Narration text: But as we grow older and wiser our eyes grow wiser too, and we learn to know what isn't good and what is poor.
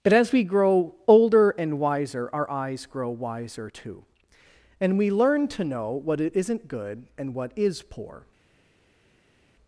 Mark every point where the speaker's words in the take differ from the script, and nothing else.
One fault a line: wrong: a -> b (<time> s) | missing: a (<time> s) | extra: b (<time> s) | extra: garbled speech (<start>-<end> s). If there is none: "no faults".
no faults